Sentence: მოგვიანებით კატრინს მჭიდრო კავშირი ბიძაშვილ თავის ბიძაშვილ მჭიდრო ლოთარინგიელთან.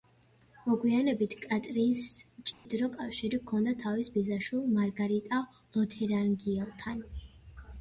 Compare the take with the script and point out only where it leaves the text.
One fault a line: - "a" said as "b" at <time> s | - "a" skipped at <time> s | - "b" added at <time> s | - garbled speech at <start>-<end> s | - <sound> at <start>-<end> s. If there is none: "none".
- dropout at 2.5-2.7 s
- "ბიძაშვილ" said as "ჰქონდა" at 3.4 s
- "მჭიდრო" said as "მარგარიტა" at 4.8 s